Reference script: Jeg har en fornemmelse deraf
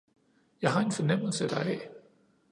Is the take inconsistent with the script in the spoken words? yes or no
no